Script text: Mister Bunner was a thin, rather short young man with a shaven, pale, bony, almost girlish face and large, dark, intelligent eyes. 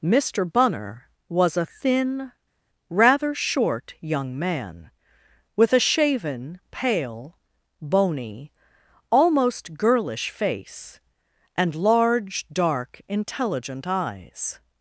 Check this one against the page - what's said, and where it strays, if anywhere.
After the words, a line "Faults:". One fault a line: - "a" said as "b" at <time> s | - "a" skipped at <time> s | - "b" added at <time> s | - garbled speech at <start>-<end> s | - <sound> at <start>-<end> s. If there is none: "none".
Mister Bunner was a thin, rather short young man with a shaven, pale, bony, almost girlish face and large, dark, intelligent eyes.
Faults:
none